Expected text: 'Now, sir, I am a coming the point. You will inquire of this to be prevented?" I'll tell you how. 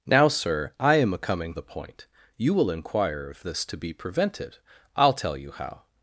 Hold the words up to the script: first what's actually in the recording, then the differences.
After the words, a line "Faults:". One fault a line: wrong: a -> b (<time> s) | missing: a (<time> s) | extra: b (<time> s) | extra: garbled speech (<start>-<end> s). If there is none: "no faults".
'Now, sir, I am a coming the point. You will inquire of this to be prevented?" I'll tell you how.
Faults:
no faults